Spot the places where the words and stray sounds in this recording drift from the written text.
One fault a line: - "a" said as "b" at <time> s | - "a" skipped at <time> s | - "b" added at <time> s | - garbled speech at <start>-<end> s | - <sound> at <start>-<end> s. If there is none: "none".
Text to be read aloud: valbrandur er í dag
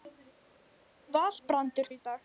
none